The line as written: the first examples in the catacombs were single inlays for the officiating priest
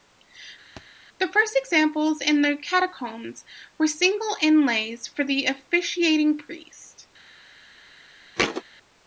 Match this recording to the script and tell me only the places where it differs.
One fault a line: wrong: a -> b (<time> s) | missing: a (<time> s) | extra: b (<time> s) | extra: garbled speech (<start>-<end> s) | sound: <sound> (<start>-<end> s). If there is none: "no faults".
sound: thud (0.8-0.9 s)
sound: thud (8.4-8.6 s)